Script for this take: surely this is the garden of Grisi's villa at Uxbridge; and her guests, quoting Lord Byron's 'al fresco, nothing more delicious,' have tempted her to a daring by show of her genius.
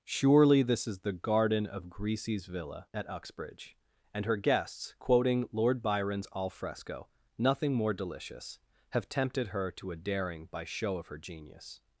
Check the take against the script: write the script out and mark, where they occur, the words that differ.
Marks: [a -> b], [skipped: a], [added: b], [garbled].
surely this is the garden of Grisi's villa at Uxbridge; and her guests, quoting Lord Byron's 'al fresco, nothing more delicious,' have tempted her to a daring by show of her genius.